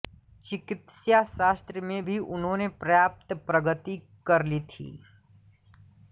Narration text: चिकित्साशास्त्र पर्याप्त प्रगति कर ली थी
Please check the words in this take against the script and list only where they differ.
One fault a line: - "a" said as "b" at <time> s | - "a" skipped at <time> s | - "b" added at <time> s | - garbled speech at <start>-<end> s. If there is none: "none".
- "में भी उन्होंने" added at 1.8 s